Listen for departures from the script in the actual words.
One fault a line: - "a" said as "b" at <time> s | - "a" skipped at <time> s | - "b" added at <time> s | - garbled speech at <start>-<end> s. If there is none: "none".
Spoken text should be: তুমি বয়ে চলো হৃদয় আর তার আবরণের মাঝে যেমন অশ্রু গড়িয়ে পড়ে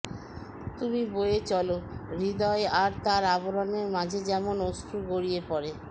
none